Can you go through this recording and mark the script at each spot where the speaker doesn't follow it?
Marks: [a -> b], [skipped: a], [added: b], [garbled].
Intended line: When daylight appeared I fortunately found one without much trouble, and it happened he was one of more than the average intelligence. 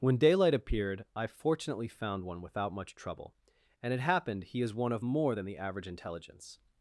When daylight appeared I fortunately found one without much trouble, and it happened he [was -> is] one of more than the average intelligence.